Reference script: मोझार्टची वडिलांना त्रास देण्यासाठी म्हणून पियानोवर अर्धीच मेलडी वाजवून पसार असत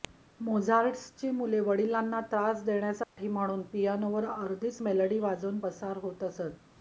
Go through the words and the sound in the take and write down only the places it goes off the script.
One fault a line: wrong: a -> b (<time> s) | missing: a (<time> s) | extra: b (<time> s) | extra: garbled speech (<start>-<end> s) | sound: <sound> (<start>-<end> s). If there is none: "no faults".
extra: मुले (1.3 s)
sound: dropout (3.0-3.2 s)
extra: होत (6.0 s)